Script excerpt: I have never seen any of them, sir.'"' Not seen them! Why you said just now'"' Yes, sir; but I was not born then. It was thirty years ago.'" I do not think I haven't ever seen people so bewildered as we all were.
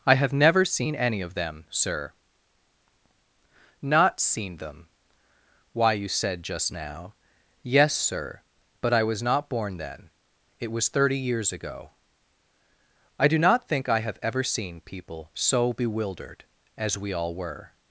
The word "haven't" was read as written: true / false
false